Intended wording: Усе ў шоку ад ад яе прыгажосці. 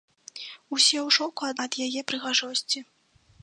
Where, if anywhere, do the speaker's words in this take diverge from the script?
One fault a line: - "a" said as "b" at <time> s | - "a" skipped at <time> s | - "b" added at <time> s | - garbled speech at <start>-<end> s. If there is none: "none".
none